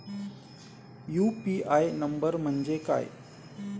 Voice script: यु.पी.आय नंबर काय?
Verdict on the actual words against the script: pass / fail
fail